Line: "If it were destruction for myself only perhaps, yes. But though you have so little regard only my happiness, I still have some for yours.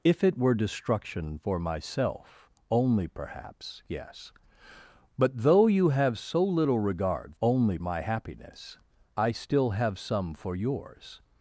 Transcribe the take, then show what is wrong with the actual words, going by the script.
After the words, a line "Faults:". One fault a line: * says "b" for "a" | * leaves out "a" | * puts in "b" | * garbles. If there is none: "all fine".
"If it were destruction for myself only perhaps, yes. But though you have so little regard only my happiness, I still have some for yours.
Faults:
all fine